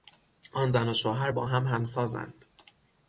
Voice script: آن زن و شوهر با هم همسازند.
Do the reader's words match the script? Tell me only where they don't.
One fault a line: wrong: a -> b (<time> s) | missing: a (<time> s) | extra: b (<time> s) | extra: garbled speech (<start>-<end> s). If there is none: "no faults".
no faults